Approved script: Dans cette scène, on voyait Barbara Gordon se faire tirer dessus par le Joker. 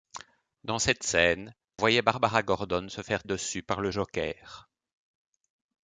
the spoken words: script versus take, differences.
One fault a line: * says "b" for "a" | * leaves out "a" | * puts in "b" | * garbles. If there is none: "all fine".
* leaves out "on"
* leaves out "tirer"